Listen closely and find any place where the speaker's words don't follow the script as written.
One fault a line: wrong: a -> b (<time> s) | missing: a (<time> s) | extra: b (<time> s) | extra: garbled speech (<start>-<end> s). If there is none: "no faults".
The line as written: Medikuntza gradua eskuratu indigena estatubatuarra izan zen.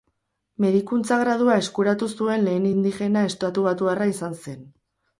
extra: zuen lehen (2.1 s)